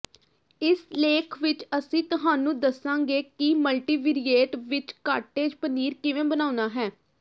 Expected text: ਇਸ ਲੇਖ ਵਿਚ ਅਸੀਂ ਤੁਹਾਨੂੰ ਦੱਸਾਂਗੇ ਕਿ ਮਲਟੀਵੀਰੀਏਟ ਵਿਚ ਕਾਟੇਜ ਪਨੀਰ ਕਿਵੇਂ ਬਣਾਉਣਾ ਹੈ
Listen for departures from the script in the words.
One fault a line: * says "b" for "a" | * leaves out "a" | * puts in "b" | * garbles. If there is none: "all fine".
all fine